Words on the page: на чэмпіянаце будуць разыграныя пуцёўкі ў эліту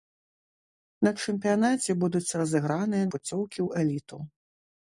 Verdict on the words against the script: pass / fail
pass